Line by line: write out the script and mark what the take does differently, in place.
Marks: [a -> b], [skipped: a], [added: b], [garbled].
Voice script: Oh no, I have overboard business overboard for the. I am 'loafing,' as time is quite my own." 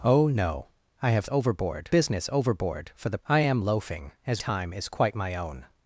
Oh no, I have overboard business overboard for the. I am 'loafing,' as time is quite my own."